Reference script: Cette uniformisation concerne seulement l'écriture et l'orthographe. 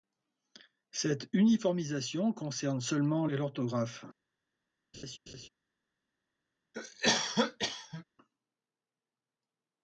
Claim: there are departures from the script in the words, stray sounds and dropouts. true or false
true